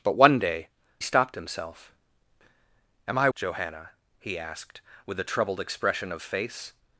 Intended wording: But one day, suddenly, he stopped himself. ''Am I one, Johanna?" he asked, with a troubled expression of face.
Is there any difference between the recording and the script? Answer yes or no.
yes